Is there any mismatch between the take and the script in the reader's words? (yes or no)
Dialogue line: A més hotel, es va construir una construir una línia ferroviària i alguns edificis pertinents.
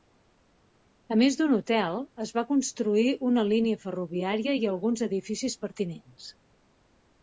yes